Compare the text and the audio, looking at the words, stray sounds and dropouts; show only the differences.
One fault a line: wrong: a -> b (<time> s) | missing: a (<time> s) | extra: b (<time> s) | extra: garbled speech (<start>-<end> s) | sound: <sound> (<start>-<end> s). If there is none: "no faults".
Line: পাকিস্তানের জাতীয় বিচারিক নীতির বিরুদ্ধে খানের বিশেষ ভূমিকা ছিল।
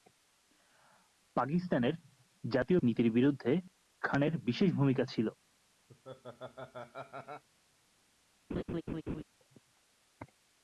missing: বিচারিক (2.8 s)
sound: laugh (5.9-7.4 s)
sound: laugh (8.5-9.2 s)